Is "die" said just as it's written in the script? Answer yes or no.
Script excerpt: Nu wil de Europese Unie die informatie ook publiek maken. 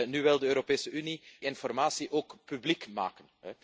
no